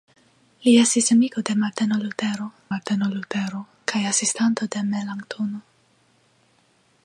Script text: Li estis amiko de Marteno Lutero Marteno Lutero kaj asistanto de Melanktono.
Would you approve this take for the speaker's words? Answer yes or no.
yes